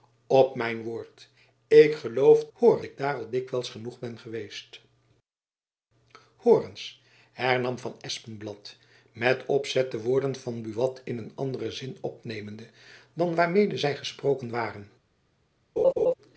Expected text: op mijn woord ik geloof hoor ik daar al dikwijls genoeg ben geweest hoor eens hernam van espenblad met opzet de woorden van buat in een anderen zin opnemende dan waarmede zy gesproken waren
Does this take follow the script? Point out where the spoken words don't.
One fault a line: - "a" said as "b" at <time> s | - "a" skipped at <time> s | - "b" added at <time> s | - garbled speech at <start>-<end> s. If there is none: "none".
none